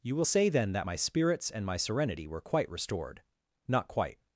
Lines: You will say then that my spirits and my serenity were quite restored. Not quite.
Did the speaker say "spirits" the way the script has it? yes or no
yes